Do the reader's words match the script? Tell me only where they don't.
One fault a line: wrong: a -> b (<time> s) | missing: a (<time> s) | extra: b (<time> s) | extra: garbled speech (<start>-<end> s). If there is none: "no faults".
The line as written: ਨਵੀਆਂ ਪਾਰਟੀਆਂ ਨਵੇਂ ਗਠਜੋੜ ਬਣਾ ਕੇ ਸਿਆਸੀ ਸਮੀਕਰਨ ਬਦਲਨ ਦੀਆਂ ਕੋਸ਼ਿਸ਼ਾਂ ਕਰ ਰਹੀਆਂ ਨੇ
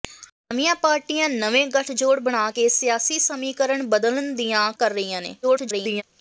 missing: ਕੋਸ਼ਿਸ਼ਾਂ (4.7 s)
extra: garbled speech (5.4-6.0 s)